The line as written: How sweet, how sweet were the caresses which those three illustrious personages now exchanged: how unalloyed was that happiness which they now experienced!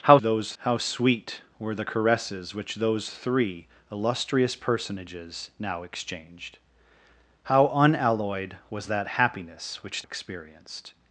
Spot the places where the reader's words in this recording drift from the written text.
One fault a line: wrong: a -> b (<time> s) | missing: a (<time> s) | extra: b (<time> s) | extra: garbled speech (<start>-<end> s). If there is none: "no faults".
wrong: sweet -> those (0.2 s)
missing: they now (10.0 s)